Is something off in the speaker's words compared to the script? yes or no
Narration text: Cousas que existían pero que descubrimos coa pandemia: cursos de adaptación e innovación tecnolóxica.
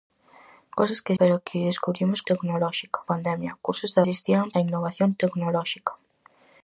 yes